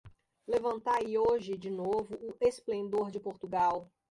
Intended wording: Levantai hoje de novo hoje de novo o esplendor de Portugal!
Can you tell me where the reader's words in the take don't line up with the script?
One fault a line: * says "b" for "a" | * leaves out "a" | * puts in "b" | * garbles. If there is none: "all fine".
* leaves out "hoje de novo"